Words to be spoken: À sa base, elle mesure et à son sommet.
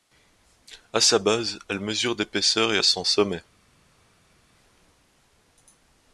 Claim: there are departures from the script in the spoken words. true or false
true